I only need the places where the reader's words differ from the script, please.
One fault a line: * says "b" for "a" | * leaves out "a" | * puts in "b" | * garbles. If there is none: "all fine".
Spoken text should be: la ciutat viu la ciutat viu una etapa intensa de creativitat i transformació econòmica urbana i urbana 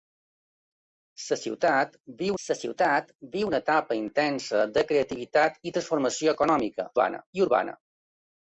all fine